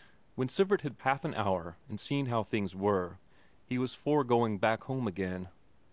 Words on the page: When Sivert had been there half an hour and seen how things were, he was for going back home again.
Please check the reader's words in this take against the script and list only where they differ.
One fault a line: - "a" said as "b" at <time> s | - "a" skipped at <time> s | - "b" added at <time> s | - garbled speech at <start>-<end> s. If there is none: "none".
- "been there" skipped at 1.0 s